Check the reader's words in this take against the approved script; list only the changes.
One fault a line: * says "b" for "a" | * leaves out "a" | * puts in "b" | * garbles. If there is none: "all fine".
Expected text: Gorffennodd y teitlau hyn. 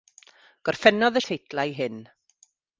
all fine